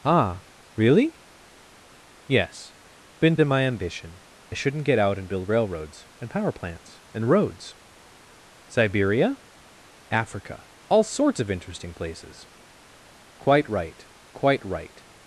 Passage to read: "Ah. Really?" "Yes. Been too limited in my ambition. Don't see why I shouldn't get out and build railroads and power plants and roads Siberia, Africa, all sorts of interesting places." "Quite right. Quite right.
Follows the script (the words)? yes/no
no